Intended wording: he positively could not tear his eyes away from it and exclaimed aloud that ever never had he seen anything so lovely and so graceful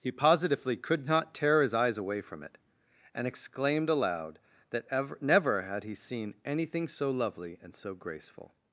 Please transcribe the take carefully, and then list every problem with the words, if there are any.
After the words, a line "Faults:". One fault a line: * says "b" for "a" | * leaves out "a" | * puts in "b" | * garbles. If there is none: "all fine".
he positively could not tear his eyes away from it and exclaimed aloud that ever never had he seen anything so lovely and so graceful
Faults:
all fine